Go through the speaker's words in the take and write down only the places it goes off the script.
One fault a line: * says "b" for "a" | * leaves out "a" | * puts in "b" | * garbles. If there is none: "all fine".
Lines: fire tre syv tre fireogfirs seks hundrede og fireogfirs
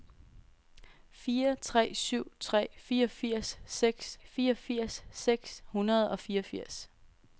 * puts in "fireogfirs seks"